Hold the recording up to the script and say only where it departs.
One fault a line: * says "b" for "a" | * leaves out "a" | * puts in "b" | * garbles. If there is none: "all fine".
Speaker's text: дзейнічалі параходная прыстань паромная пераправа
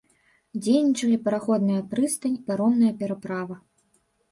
all fine